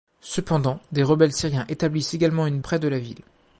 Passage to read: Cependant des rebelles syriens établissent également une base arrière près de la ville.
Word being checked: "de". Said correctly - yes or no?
yes